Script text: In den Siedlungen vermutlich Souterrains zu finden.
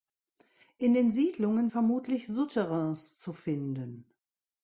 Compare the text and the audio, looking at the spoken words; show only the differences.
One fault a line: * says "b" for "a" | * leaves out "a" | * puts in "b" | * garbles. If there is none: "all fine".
all fine